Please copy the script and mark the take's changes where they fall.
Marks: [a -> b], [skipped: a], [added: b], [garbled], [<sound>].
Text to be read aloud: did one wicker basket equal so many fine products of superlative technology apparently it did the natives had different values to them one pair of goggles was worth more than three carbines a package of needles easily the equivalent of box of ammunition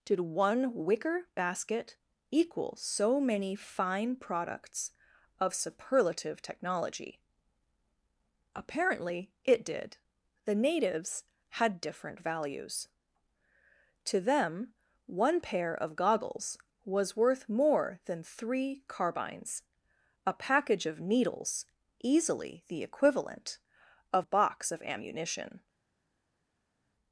did one wicker basket equal so many fine products of superlative technology apparently it did the natives had different values to them one pair of goggles was worth more than three carbines a package of needles easily the equivalent of box of ammunition